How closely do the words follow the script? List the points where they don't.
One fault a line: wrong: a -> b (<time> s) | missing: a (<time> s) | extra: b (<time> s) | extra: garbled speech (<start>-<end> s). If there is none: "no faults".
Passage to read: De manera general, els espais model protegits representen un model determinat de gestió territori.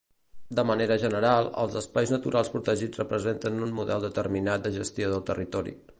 wrong: model -> naturals (2.1 s)
extra: del (5.1 s)